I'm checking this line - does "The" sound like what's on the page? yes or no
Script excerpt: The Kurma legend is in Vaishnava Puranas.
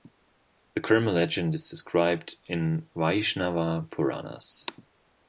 yes